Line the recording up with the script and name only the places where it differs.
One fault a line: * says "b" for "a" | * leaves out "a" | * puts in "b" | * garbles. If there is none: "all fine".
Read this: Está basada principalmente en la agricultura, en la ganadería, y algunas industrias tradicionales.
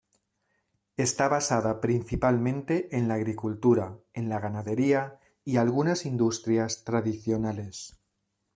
all fine